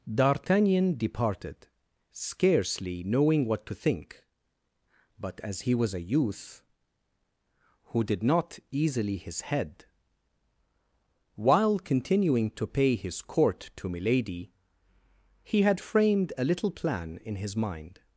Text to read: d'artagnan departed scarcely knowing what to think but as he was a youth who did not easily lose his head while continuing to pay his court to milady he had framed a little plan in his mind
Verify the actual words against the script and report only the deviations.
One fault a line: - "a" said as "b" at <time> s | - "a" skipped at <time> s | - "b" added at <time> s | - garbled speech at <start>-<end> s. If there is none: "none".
- "lose" skipped at 9.2 s